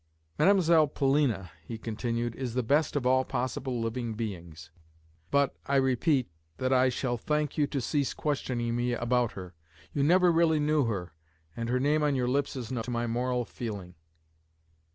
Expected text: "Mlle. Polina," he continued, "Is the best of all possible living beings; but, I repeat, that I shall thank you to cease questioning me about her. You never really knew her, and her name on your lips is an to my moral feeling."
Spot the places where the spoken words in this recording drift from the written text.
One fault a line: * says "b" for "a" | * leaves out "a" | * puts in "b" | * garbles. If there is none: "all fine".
all fine